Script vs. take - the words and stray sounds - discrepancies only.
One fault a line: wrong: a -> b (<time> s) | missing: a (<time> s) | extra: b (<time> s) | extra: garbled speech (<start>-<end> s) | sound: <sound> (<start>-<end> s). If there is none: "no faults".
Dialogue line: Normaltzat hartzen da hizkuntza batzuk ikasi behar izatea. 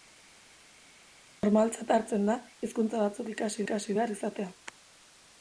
extra: ikasi (3.6 s)